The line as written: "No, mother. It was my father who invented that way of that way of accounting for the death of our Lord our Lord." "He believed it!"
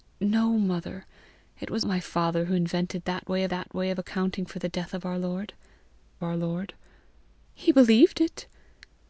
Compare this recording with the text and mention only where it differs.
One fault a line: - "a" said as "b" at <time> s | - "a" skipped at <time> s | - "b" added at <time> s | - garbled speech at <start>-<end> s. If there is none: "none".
none